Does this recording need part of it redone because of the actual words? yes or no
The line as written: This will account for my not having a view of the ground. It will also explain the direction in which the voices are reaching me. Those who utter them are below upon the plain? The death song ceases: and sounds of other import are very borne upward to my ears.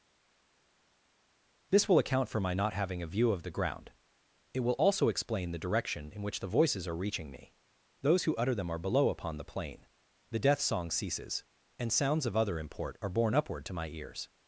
yes